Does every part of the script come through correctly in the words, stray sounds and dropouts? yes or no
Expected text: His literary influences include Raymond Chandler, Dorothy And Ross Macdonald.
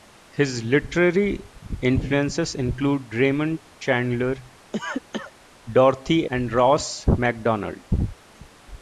no